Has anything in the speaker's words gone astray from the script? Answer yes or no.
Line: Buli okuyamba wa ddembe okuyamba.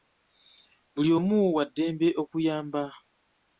yes